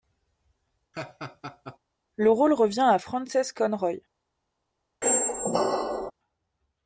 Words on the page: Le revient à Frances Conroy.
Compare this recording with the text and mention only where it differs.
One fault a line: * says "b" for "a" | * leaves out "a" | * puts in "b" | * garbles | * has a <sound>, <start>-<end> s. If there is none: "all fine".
* has a laugh, 0.9-1.8 s
* puts in "rôle"
* has a squeak, 5.0-6.1 s